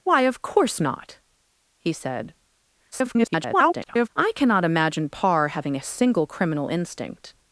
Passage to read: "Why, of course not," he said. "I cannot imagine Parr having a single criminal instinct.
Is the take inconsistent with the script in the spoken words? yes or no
yes